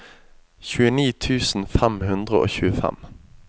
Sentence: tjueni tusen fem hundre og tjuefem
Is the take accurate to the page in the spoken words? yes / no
yes